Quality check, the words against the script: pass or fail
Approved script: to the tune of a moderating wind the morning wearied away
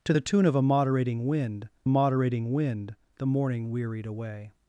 fail